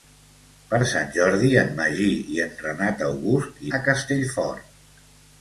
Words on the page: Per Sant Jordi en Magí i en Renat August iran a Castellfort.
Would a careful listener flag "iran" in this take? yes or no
yes